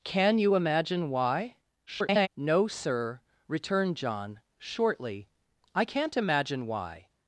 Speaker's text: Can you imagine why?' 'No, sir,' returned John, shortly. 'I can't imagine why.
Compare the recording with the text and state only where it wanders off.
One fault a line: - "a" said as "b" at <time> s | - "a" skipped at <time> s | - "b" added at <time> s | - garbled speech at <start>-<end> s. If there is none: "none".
- garbled speech at 1.9-2.3 s